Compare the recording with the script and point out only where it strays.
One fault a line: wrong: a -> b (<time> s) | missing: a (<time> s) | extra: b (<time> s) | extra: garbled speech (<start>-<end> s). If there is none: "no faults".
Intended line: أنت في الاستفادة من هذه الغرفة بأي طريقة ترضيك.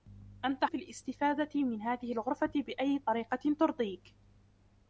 no faults